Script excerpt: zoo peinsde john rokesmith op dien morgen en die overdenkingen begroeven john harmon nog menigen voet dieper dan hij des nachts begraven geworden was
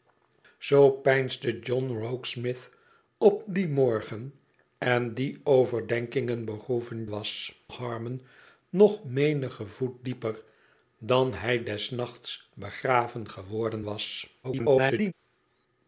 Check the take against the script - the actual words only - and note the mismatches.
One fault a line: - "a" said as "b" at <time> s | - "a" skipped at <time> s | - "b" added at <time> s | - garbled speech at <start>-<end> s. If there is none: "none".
- "john" said as "was" at 7.1 s
- garbled speech at 14.4-15.1 s